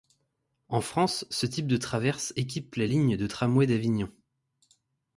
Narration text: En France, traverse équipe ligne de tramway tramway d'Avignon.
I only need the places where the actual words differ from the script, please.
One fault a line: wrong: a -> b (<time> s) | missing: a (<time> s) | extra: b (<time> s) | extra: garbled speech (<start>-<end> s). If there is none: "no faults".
extra: ce type de (1.3 s)
extra: la (2.7 s)
missing: tramway (3.7 s)